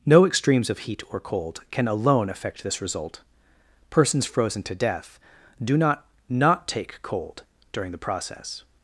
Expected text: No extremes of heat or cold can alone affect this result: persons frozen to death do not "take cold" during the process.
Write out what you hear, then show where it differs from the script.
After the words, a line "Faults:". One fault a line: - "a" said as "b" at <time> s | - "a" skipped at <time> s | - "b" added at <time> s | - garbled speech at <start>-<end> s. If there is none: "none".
No extremes of heat or cold can alone affect this result: persons frozen to death do not not "take cold" during the process.
Faults:
- "not" added at 6.3 s